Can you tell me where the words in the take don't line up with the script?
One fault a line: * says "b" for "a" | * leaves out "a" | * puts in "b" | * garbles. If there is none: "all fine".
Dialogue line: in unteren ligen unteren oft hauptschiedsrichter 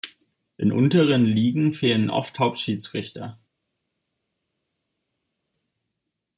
* says "fehlen" for "unteren"